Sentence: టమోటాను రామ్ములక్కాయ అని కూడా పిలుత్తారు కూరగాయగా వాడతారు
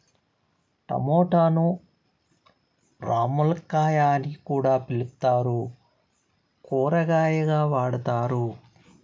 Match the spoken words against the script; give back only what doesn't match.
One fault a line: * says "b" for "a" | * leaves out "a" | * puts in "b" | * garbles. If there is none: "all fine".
all fine